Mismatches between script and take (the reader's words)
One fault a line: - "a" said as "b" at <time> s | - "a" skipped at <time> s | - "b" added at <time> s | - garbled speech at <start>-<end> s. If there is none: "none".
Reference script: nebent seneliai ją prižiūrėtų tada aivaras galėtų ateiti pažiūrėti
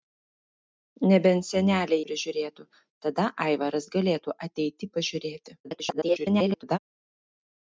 - "ją" skipped at 2.0 s
- garbled speech at 5.6-6.8 s